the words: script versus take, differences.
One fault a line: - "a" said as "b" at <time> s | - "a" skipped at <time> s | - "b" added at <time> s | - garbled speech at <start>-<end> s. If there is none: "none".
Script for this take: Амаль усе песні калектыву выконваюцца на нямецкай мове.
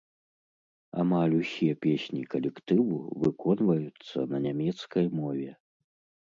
none